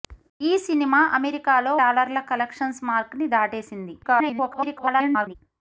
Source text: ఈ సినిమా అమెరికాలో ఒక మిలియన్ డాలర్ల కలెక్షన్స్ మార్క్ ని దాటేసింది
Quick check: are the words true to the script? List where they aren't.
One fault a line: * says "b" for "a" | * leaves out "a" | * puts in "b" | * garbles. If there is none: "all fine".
* leaves out "ఒక మిలియన్"
* garbles